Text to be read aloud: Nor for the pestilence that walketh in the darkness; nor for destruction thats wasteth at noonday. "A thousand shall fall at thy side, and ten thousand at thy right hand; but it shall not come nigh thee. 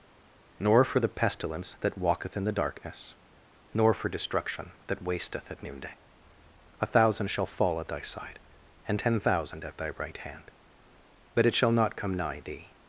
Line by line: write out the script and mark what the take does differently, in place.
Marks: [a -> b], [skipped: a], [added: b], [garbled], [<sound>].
Nor for the pestilence that walketh in the darkness; nor for destruction [thats -> that] wasteth at noonday. "A thousand shall fall at thy side, and ten thousand at thy right hand; but it shall not come nigh thee.